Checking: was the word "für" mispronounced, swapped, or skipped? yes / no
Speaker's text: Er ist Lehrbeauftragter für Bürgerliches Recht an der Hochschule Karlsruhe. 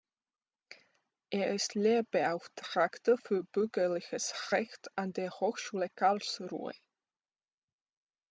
no